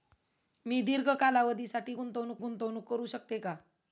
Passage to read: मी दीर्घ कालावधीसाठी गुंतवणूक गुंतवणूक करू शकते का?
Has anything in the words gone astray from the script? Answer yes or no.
no